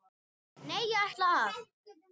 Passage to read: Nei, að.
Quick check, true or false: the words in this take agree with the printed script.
false